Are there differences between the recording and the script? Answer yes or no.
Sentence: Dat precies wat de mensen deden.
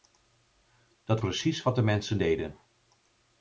no